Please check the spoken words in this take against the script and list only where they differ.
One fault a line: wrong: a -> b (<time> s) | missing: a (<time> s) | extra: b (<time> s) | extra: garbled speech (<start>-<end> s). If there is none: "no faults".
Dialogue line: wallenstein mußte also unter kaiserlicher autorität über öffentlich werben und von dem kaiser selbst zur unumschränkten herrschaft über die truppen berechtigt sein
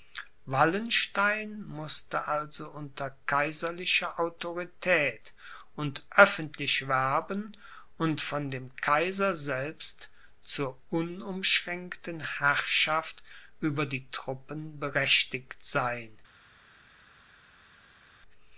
wrong: über -> und (5.8 s)